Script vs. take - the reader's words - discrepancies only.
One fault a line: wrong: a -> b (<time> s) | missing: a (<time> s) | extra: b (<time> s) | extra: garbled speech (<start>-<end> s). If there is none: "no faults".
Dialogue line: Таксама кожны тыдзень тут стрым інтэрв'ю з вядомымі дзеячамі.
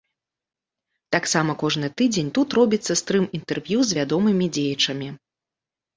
extra: робіцца (2.6 s)